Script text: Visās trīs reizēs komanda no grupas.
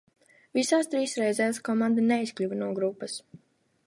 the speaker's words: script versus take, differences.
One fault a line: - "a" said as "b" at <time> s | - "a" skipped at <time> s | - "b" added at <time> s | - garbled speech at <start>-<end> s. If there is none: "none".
- "neizkļuva" added at 2.1 s